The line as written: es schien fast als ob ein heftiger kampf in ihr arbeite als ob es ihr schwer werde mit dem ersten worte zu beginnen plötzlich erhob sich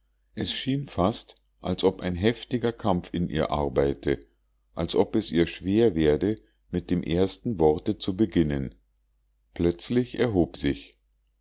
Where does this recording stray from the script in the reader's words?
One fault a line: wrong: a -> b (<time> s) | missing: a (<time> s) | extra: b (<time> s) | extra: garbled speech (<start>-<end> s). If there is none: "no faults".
no faults